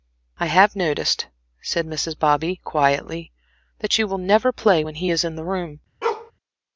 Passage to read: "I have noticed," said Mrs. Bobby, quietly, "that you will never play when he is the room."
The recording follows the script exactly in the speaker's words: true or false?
false